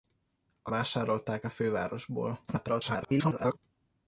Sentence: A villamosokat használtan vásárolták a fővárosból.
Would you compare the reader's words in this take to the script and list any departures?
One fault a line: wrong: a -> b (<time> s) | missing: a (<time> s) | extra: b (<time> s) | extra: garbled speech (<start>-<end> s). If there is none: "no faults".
missing: villamosokat használtan (0.7 s)
extra: garbled speech (2.5-3.6 s)